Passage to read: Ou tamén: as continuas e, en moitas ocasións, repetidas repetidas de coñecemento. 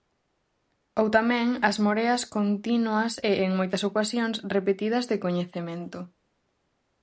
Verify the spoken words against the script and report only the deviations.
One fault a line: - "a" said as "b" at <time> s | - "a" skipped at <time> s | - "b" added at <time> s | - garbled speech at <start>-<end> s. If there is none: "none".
- "moreas" added at 1.9 s
- "repetidas" skipped at 5.1 s